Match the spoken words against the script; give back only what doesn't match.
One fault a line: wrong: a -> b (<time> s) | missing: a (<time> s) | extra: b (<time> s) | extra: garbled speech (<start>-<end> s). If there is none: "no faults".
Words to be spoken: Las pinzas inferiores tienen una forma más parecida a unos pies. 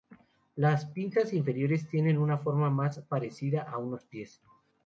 no faults